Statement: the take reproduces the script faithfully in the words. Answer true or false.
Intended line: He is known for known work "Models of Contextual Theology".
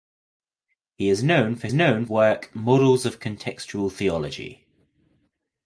true